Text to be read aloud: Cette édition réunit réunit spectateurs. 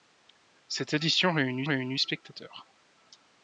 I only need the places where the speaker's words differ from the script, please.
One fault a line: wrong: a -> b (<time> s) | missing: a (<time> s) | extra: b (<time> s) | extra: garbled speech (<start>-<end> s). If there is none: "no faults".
no faults